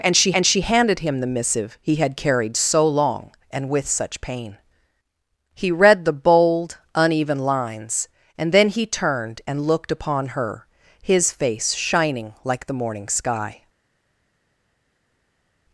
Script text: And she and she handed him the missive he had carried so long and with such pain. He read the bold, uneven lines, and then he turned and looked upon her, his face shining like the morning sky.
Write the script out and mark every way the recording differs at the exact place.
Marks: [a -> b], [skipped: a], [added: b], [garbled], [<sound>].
And she and she handed him the missive he had carried so long and with such pain. He read the bold, uneven lines, and then he turned and looked upon her, his face shining like the morning sky.